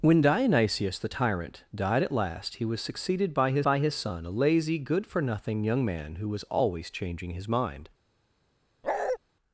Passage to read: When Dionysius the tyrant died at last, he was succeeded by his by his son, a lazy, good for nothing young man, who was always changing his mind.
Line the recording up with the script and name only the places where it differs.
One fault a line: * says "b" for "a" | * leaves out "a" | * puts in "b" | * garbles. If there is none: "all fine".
all fine